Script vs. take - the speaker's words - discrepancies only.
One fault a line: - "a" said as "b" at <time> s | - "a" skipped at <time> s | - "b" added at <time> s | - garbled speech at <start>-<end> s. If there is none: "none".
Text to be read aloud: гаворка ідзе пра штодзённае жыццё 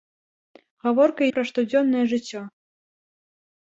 - "ідзе" skipped at 1.2 s